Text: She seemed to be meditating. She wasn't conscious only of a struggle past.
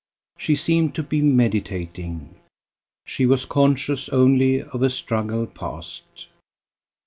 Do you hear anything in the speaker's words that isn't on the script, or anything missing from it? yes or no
yes